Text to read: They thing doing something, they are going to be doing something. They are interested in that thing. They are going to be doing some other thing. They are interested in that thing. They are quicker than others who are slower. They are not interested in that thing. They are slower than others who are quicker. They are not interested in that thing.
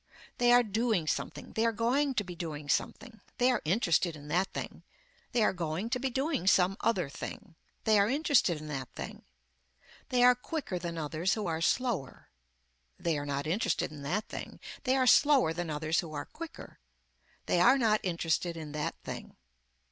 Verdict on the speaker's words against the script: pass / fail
fail